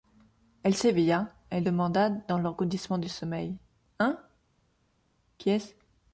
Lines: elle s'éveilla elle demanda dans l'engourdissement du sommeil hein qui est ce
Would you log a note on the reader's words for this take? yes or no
no